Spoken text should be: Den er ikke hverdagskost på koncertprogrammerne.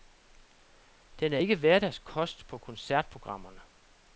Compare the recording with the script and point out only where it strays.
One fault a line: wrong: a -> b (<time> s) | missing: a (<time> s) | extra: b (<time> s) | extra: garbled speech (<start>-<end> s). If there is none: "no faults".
no faults